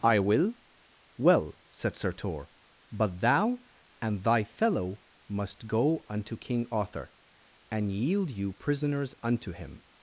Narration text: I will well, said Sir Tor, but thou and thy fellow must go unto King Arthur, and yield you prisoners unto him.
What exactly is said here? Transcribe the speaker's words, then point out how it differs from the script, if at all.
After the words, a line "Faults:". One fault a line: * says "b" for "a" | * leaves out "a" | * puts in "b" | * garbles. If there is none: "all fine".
I will well, said Sir Tor, but thou and thy fellow must go unto King Arthur, and yield you prisoners unto him.
Faults:
all fine